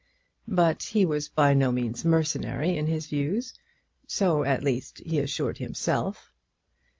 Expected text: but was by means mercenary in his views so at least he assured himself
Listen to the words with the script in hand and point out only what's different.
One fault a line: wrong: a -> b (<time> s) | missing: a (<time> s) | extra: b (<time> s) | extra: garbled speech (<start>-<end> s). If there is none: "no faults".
extra: he (0.8 s)
extra: no (1.5 s)